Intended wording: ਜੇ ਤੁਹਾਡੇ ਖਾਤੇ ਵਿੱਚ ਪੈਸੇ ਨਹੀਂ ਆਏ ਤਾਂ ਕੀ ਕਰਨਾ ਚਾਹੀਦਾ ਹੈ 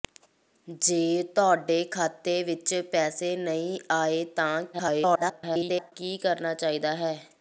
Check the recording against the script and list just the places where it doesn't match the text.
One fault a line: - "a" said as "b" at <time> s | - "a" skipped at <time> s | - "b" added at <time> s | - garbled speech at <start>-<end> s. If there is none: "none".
- garbled speech at 4.7-5.9 s